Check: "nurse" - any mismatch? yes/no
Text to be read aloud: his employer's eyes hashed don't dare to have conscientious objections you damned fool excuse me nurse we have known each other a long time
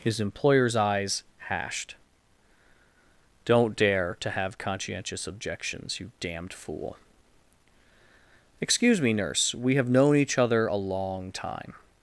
no